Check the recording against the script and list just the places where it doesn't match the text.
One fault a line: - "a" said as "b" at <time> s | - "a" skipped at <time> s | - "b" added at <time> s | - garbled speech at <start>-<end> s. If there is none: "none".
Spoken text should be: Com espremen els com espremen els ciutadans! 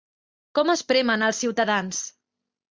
- "com espremen els" skipped at 1.4 s